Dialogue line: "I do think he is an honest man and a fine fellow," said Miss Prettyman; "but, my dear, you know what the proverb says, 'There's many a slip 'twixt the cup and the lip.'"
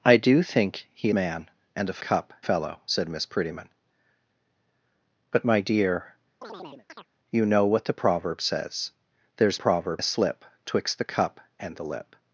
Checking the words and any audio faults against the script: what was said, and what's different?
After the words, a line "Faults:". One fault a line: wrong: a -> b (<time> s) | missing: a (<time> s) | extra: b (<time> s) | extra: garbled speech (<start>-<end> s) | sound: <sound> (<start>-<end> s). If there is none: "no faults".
"I do think he man and a cup fellow," said Miss Prettyman; "but, my dear, you know what the proverb says, 'There's proverb a slip 'twixt the cup and the lip.'"
Faults:
missing: is an honest (1.1 s)
wrong: fine -> cup (2.0 s)
sound: chirp (6.4-7.1 s)
wrong: many -> proverb (9.6 s)